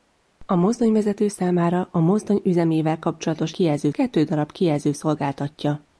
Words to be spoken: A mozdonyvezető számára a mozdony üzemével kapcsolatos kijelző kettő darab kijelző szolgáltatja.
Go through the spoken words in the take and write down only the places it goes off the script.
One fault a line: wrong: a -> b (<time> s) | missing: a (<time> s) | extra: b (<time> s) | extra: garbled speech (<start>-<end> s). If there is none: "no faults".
no faults